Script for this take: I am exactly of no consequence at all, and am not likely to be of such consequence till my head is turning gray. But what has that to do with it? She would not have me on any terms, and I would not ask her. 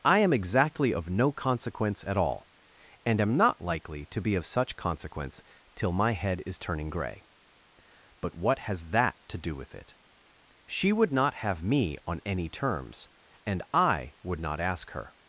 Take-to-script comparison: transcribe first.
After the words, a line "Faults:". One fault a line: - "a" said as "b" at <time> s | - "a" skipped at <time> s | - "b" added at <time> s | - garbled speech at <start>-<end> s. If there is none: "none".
I am exactly of no consequence at all, and am not likely to be of such consequence till my head is turning gray. But what has that to do with it? She would not have me on any terms, and I would not ask her.
Faults:
none